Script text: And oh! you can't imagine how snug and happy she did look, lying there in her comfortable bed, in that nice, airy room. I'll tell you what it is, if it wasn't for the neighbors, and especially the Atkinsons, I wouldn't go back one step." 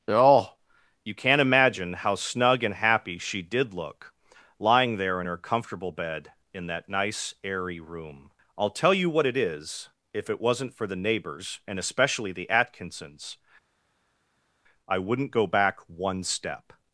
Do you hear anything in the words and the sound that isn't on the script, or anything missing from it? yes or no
yes